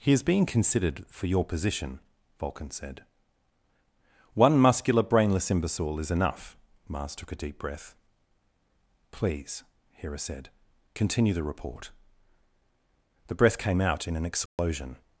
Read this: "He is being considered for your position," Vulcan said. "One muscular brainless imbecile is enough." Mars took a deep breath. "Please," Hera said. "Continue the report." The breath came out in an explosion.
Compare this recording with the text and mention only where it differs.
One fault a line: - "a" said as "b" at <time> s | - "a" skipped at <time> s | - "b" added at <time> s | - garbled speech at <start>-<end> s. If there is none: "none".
none